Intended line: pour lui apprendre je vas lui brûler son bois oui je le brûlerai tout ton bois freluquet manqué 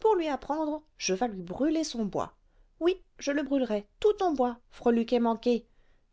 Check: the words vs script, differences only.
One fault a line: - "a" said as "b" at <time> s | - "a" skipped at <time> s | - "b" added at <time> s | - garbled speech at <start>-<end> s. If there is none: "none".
none